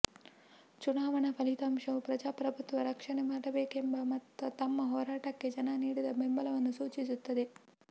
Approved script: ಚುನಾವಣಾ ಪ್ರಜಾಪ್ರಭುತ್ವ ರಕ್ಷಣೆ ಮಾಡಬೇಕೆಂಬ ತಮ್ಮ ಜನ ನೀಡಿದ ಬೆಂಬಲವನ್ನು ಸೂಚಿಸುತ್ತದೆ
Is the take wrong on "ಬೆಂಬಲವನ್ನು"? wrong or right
right